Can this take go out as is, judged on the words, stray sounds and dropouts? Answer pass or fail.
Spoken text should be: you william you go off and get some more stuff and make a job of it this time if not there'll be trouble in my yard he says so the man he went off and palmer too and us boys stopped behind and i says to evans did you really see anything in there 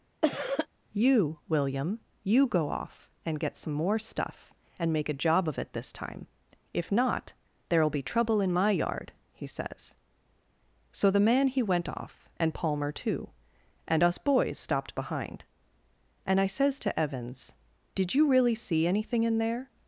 fail